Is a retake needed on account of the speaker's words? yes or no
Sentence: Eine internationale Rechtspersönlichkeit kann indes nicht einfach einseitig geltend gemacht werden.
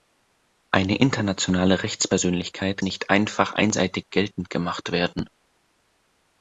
yes